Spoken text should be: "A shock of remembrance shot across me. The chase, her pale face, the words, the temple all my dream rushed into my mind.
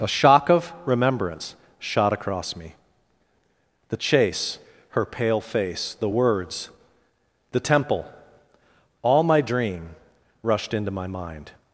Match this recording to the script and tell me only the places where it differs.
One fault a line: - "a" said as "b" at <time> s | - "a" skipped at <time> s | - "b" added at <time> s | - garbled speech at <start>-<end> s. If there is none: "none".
none